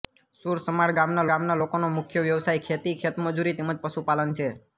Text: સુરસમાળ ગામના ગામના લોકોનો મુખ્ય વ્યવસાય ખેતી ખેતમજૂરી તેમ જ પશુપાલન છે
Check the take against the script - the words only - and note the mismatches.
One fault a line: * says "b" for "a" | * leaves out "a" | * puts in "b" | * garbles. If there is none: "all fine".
all fine